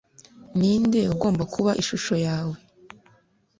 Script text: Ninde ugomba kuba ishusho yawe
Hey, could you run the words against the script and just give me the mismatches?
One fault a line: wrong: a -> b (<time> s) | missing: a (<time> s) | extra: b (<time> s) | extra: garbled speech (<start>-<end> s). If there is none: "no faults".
no faults